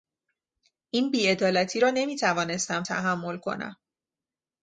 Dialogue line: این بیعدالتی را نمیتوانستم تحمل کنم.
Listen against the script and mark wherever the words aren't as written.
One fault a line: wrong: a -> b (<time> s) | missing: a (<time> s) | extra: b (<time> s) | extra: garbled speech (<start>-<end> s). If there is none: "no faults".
no faults